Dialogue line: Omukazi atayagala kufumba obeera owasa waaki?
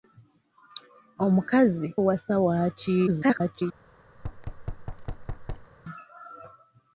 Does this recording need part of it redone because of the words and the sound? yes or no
yes